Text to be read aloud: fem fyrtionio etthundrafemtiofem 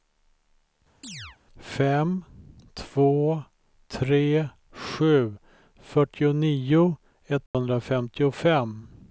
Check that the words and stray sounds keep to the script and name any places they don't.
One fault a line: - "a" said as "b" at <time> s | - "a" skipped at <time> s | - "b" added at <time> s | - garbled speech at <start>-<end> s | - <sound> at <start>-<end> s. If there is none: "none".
- chirp at 1.0-1.4 s
- "två tre sju" added at 2.7 s
- dropout at 7.5-7.5 s